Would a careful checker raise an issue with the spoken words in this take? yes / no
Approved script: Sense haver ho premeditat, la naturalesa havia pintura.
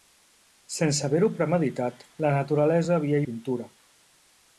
no